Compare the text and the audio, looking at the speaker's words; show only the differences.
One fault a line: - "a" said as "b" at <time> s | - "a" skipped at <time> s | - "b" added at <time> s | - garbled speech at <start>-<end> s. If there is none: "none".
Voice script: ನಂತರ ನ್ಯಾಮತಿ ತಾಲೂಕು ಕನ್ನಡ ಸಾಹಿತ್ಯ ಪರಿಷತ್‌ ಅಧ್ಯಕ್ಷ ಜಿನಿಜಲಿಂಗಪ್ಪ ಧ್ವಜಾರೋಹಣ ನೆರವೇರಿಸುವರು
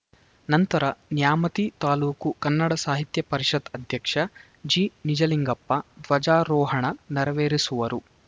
none